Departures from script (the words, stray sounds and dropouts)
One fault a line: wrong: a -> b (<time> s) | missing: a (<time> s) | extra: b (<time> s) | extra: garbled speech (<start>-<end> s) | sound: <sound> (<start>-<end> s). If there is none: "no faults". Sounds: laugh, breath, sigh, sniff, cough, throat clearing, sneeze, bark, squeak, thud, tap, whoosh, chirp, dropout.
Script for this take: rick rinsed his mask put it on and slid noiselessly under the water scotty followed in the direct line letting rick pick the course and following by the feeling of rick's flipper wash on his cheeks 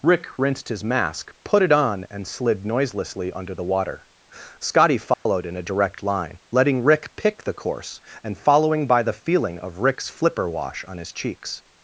sound: dropout (5.1-5.3 s)
wrong: the -> a (5.6 s)